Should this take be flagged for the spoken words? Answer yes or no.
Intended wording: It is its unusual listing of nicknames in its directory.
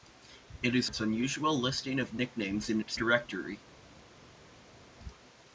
no